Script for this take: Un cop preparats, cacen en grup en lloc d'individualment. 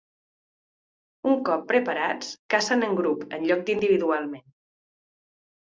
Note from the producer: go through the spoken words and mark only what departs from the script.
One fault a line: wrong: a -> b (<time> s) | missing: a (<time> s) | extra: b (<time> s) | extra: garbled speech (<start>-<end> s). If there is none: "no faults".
no faults